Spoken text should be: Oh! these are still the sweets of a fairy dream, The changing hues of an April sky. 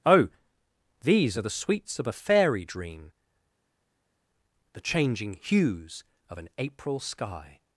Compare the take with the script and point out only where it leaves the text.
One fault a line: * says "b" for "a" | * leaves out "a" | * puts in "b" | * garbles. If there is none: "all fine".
* leaves out "still"